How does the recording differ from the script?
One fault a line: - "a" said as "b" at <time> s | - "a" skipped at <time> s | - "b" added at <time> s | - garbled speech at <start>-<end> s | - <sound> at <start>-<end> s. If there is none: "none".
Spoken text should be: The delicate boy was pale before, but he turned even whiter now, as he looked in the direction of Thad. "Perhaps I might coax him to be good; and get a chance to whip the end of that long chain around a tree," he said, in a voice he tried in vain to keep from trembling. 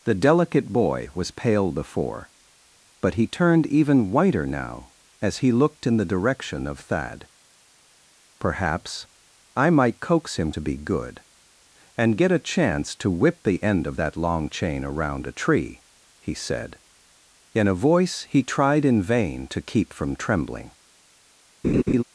- laugh at 21.6-22.0 s